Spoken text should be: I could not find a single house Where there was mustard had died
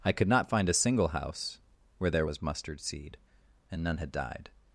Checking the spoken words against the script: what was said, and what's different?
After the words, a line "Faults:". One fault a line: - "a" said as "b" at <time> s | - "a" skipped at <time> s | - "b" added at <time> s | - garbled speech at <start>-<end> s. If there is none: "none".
I could not find a single house Where there was mustard seed and none had died
Faults:
- "seed and none" added at 2.8 s